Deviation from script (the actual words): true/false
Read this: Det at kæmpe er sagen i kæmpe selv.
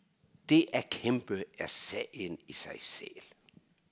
true